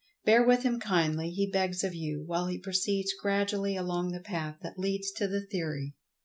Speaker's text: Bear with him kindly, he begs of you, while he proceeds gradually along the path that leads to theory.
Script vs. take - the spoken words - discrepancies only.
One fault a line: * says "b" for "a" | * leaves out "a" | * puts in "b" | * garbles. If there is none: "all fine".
* puts in "the"